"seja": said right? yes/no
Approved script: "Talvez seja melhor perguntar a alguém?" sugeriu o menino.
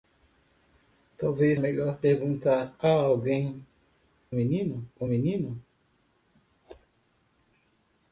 no